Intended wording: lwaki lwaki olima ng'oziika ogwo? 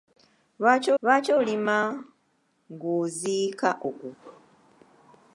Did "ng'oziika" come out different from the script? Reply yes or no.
no